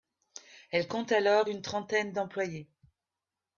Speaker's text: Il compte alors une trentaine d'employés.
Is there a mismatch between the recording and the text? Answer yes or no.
yes